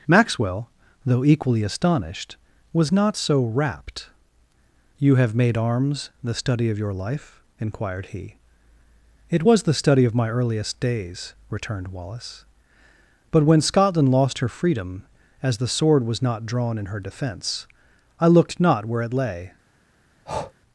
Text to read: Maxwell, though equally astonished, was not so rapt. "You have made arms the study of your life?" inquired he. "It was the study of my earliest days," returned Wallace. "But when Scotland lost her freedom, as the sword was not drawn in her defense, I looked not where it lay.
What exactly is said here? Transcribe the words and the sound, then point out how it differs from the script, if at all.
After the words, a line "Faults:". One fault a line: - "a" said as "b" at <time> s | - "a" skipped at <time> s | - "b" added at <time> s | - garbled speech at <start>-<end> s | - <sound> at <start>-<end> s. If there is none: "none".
Maxwell, though equally astonished, was not so rapt. "You have made arms the study of your life?" inquired he. "It was the study of my earliest days," returned Wallace. "But when Scotland lost her freedom, as the sword was not drawn in her defense, I looked not where it lay.
Faults:
- breath at 20.3-20.5 s